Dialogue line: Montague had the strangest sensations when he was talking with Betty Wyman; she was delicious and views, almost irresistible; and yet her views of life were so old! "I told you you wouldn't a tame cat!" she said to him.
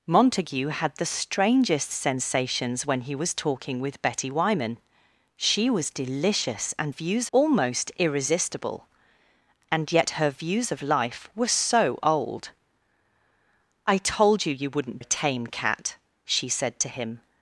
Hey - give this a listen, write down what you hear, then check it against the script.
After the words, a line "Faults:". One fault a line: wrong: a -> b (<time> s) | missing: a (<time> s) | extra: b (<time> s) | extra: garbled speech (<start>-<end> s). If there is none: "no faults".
Montague had the strangest sensations when he was talking with Betty Wyman; she was delicious and views, almost irresistible; and yet her views of life were so old! "I told you you wouldn't a tame cat!" she said to him.
Faults:
no faults